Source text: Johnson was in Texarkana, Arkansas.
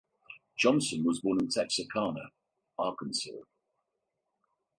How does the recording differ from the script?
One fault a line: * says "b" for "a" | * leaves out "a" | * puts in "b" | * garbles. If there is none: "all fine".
* puts in "born"